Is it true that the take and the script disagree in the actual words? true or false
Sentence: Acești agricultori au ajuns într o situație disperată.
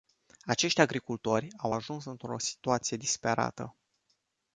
false